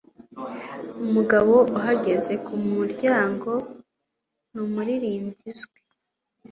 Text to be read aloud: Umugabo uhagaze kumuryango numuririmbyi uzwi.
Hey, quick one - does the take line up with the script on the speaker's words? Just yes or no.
yes